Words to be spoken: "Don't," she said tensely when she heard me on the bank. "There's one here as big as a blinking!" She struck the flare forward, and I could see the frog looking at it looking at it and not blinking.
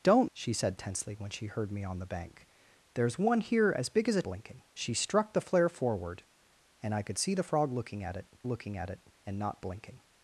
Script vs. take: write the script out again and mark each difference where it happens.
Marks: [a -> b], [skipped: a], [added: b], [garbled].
"Don't," she said tensely when she heard me on the bank. "There's one here as big as a blinking!" She struck the flare forward, and I could see the frog looking at it looking at it and not blinking.